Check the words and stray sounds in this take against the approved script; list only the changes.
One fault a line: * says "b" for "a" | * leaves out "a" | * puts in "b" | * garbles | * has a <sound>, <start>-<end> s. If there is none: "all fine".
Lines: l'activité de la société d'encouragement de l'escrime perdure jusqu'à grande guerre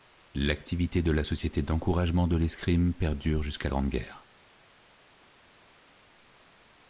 all fine